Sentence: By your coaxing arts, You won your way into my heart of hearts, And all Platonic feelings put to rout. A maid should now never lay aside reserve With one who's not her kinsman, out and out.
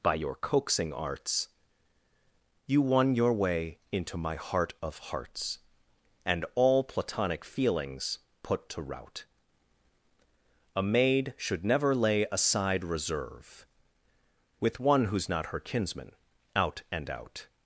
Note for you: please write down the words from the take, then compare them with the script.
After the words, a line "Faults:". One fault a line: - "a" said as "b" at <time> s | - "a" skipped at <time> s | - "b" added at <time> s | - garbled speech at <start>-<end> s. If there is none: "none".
By your coaxing arts, You won your way into my heart of hearts, And all Platonic feelings put to rout. A maid should never lay aside reserve With one who's not her kinsman, out and out.
Faults:
- "now" skipped at 11.6 s